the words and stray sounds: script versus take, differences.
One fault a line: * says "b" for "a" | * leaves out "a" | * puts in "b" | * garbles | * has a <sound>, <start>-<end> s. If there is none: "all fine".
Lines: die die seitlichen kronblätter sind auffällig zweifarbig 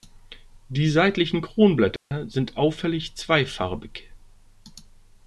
* leaves out "die"
* has a dropout, 2.0-2.1 s